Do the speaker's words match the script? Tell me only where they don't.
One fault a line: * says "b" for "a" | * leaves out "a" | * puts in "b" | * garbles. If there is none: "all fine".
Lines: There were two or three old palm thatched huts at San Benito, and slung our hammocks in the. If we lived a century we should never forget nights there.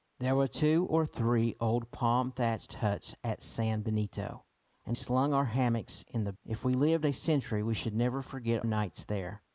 all fine